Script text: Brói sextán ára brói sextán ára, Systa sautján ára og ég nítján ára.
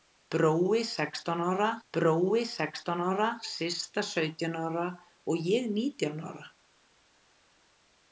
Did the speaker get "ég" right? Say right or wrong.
right